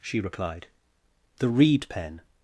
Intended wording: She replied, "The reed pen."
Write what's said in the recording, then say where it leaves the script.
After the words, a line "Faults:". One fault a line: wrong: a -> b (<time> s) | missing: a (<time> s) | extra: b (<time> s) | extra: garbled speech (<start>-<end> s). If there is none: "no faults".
She replied, "The reed pen."
Faults:
no faults